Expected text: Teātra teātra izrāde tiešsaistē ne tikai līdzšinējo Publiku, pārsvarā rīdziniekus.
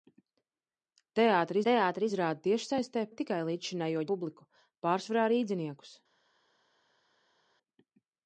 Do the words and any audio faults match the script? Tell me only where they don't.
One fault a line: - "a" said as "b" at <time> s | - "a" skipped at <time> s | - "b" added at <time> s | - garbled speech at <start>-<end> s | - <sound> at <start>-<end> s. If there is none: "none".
none